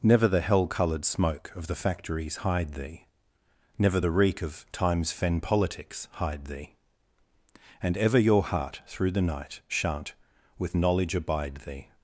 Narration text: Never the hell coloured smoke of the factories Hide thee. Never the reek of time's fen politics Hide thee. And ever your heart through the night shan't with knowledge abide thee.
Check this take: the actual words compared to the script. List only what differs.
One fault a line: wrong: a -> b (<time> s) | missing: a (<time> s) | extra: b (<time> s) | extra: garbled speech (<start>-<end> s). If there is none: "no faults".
no faults